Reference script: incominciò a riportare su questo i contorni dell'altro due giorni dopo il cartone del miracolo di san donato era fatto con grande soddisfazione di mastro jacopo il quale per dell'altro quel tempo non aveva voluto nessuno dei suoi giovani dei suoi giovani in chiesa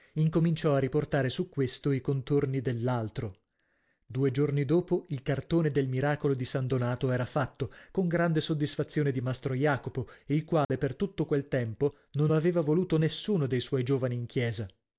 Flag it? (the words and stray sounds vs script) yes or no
yes